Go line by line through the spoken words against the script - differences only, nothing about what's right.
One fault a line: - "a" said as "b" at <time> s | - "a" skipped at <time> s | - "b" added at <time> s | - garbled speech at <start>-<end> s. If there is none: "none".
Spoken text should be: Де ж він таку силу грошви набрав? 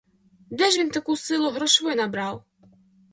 none